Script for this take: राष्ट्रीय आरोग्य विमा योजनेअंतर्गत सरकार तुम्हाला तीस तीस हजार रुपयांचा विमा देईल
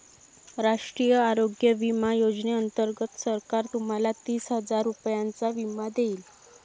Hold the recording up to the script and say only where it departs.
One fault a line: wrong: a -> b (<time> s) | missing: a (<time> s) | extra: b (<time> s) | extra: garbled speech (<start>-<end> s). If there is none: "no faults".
missing: तीस (4.5 s)